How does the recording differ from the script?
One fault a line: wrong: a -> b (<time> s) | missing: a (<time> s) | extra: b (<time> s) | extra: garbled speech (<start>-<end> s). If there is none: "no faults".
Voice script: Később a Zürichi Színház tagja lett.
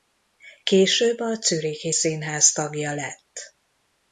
no faults